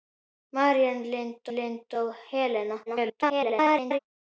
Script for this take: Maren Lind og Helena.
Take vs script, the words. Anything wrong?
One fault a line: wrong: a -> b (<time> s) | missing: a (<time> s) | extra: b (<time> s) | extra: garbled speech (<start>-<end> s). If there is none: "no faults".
extra: Lind (1.6 s)
extra: garbled speech (2.9-4.0 s)